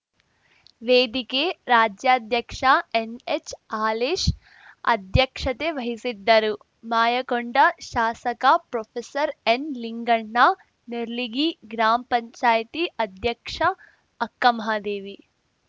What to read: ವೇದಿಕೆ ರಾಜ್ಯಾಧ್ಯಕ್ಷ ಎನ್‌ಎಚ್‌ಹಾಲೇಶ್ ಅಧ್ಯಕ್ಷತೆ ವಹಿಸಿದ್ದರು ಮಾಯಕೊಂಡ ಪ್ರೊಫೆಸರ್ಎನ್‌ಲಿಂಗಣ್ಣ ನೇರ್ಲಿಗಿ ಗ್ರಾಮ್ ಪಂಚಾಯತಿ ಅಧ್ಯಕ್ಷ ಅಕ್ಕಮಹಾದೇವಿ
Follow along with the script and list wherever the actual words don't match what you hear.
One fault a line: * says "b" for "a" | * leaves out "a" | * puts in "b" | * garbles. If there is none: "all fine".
* puts in "ಶಾಸಕ"